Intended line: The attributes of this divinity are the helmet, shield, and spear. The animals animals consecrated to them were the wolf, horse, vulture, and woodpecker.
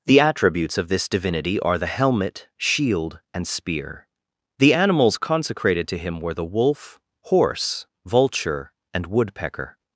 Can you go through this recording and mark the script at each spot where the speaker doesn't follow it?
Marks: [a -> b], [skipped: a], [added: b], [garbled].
The attributes of this divinity are the helmet, shield, and spear. The animals [skipped: animals] consecrated to [them -> him] were the wolf, horse, vulture, and woodpecker.